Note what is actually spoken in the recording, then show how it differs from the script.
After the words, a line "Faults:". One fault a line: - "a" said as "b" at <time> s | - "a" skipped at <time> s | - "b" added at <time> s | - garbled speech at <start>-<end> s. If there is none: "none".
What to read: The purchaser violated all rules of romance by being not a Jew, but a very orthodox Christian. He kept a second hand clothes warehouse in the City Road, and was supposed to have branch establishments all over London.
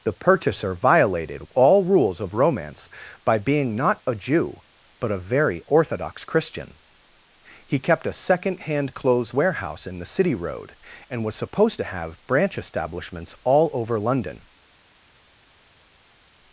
The purchaser violated all rules of romance by being not a Jew, but a very orthodox Christian. He kept a second hand clothes warehouse in the City Road, and was supposed to have branch establishments all over London.
Faults:
none